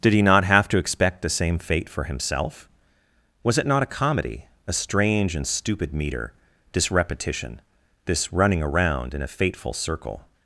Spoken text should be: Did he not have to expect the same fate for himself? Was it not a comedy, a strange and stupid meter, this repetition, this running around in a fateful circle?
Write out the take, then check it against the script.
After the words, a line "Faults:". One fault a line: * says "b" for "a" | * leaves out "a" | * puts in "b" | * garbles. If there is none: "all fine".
Did he not have to expect the same fate for himself? Was it not a comedy, a strange and stupid meter, this repetition, this running around in a fateful circle?
Faults:
all fine